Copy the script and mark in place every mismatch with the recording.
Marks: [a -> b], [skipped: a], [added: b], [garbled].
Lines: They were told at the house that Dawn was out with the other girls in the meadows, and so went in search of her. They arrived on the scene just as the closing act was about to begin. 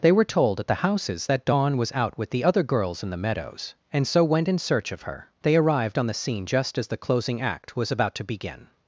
They were told at the [house -> houses] that Dawn was out with the other girls in the meadows, and so went in search of her. They arrived on the scene just as the closing act was about to begin.